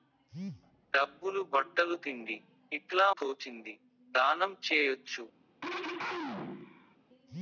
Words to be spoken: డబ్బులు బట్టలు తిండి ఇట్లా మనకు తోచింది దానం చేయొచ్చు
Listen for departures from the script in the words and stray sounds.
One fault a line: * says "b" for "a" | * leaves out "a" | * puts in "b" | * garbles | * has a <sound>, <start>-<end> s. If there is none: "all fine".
* leaves out "మనకు"
* has a throat clearing, 5.6-7.0 s